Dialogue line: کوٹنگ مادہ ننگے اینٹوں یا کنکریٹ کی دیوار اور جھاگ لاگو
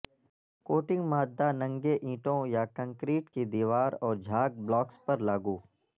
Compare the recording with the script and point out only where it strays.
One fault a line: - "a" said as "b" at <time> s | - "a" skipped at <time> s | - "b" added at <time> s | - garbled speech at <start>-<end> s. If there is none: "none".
- "بلاکس پر" added at 4.6 s